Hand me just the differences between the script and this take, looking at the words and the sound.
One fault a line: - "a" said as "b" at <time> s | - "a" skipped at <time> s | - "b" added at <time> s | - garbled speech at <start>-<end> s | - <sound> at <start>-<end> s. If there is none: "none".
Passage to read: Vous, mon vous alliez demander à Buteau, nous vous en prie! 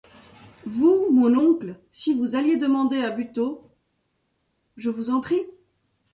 - "oncle si" added at 1.3 s
- "nous" said as "je" at 4.8 s